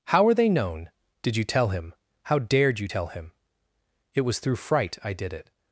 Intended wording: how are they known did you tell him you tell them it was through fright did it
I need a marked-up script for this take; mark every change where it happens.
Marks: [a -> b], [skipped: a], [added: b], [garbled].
how are they known did you tell him [added: how dared] you tell [them -> him] it was through fright [added: i] did it